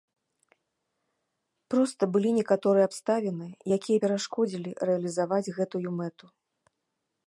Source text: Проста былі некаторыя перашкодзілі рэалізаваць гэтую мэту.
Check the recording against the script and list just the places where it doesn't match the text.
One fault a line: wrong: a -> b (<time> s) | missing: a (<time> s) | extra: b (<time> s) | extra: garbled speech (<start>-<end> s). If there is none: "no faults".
extra: абставіны якія (2.9 s)